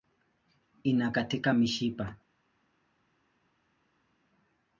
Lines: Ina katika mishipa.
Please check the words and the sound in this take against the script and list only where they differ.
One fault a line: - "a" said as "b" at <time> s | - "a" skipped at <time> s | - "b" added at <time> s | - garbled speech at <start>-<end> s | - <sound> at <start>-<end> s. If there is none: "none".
none